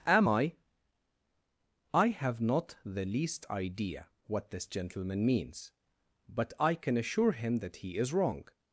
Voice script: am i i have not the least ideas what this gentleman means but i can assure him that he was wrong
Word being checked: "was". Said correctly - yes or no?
no